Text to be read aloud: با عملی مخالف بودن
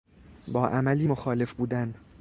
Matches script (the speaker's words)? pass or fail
pass